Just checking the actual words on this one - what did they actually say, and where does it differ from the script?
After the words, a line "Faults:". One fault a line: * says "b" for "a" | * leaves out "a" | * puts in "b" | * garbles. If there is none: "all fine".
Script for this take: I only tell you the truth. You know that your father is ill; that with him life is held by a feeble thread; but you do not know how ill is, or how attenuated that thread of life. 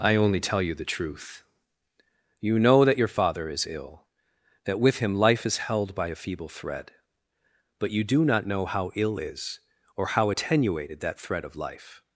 I only tell you the truth. You know that your father is ill; that with him life is held by a feeble thread; but you do not know how ill is, or how attenuated that thread of life.
Faults:
all fine